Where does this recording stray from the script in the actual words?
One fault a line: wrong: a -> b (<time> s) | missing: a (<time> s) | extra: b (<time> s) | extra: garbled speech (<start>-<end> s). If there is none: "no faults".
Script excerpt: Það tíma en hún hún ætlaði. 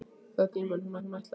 no faults